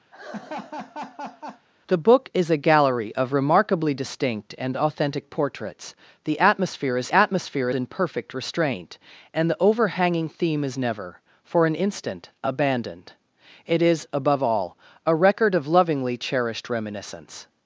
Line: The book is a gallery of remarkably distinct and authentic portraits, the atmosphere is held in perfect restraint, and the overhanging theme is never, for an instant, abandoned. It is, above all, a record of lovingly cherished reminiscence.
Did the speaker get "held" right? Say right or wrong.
wrong